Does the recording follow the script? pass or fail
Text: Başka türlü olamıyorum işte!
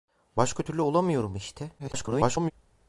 fail